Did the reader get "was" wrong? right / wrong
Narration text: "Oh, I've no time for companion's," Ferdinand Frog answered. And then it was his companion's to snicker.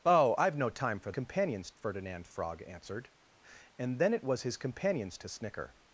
right